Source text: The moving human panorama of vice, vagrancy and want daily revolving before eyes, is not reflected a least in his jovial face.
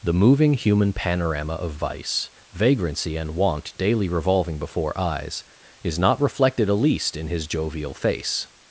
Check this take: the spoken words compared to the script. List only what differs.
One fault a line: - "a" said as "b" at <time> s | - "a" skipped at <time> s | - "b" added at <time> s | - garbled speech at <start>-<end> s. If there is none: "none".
none